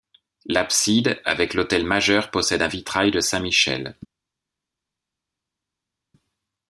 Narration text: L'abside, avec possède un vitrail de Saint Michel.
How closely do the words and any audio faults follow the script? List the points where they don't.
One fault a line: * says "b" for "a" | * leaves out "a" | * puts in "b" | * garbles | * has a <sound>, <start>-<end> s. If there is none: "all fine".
* puts in "l'autel majeur"